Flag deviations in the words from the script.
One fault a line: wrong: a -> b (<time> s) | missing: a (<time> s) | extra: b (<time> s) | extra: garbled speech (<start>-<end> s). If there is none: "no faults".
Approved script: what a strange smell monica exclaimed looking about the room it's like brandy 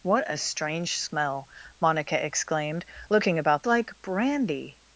missing: the room it's (3.6 s)